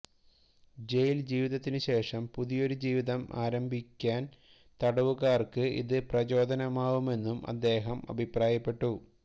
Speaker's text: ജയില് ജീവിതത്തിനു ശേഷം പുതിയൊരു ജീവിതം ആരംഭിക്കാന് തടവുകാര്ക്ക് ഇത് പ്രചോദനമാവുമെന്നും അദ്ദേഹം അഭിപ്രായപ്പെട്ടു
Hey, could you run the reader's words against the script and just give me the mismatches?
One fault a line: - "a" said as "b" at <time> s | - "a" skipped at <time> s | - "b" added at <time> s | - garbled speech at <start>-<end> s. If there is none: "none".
none